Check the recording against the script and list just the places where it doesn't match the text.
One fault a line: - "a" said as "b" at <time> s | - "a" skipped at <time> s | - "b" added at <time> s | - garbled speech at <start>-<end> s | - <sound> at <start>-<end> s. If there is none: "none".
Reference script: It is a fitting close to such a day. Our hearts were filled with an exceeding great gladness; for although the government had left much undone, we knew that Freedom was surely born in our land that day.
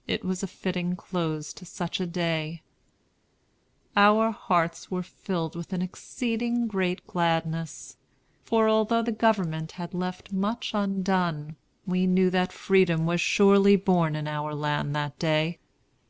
- "is" said as "was" at 0.2 s